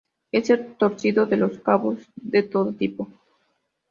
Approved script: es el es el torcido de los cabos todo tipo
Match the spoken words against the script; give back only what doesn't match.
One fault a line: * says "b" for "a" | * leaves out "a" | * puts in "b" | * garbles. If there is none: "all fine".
* leaves out "es el"
* puts in "de"